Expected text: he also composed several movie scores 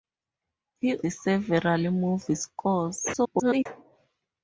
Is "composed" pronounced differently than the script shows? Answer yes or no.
yes